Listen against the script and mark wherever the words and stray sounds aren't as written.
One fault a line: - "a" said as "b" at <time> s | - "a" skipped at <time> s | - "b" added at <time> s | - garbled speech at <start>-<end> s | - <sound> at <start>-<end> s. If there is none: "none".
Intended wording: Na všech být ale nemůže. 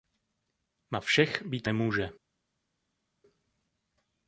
- "ale" skipped at 1.7 s